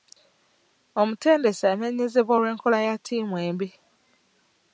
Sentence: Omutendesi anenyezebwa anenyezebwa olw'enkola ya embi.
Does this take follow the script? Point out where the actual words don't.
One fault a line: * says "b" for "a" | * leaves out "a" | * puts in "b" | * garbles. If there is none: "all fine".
* leaves out "anenyezebwa"
* puts in "ttiimu"